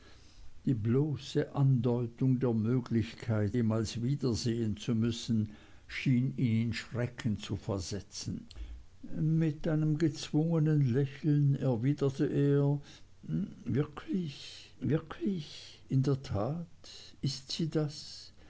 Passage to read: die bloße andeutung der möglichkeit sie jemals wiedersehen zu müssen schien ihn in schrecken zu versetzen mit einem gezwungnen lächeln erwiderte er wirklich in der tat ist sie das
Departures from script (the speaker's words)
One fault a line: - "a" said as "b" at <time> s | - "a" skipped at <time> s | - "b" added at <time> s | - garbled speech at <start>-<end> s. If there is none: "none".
- "sie" skipped at 3.5 s
- "wirklich" added at 14.8 s